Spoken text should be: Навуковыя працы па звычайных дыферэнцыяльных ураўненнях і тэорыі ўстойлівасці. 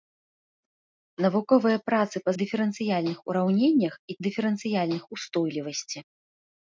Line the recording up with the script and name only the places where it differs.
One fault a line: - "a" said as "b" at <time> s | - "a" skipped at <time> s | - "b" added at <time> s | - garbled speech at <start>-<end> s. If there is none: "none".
- "звычайных" skipped at 2.3 s
- "тэорыі" said as "дыферэнцыяльных" at 4.3 s